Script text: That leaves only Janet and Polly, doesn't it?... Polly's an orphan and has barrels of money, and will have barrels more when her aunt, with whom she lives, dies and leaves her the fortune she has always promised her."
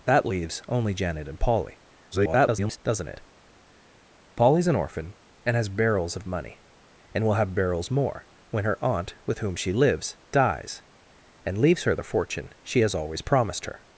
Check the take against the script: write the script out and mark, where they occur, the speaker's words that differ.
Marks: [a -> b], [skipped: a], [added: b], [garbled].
That leaves only Janet and Polly, [garbled] doesn't it?... Polly's an orphan and has barrels of money, and will have barrels more when her aunt, with whom she lives, dies and leaves her the fortune she has always promised her."